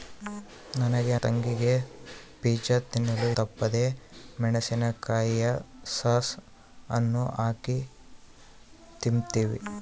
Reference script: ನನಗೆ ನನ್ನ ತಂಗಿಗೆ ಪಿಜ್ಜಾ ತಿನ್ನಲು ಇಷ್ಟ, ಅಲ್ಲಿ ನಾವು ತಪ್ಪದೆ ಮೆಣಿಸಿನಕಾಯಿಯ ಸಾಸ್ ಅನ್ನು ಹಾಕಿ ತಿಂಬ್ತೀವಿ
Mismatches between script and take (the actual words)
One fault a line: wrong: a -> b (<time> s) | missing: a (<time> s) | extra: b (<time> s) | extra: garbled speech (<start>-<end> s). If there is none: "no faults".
missing: ನನ್ನ (1.1 s)
missing: ಇಷ್ಟ ಅಲ್ಲಿ ನಾವು (3.3 s)